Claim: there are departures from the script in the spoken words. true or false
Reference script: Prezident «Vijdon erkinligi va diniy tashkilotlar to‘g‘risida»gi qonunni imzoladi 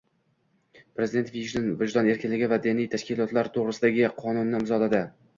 false